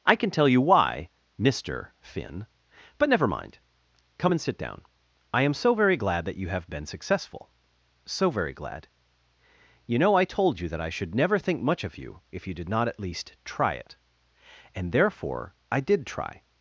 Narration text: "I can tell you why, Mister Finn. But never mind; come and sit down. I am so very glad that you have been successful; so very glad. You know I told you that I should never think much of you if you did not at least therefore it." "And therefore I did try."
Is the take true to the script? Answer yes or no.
no